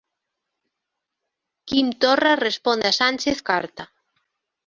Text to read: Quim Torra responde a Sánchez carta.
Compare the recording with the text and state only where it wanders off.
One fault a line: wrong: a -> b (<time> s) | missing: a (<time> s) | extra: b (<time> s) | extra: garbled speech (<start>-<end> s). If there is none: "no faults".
no faults